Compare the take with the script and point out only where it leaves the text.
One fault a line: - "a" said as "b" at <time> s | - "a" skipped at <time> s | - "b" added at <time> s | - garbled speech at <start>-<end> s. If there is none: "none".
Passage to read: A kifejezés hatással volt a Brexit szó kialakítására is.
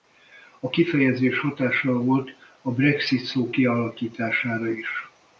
none